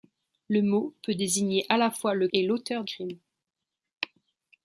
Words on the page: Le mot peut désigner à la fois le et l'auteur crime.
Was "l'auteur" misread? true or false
false